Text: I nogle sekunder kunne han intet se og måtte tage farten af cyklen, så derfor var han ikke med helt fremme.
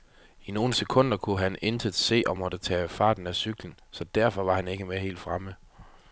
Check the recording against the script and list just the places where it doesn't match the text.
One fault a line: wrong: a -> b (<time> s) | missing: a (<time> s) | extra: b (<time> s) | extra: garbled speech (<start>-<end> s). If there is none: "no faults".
no faults